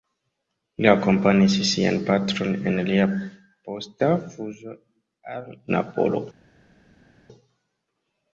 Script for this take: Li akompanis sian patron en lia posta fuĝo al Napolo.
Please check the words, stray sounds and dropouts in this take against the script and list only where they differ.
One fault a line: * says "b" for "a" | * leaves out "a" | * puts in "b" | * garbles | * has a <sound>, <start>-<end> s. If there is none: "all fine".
all fine